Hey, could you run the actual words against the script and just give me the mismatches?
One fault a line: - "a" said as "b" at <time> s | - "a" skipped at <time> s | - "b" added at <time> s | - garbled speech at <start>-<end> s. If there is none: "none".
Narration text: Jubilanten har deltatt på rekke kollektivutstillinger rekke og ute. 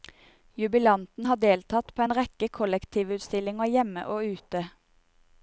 - "en" added at 2.0 s
- "rekke" said as "hjemme" at 3.8 s